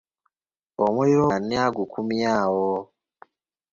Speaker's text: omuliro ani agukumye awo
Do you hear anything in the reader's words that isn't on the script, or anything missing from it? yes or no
no